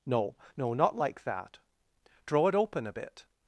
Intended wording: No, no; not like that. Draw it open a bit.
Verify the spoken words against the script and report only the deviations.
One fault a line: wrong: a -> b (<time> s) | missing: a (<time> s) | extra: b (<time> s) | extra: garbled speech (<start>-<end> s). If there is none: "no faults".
no faults